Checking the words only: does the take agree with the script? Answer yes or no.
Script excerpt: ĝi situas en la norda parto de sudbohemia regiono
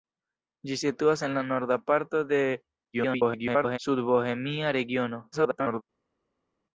no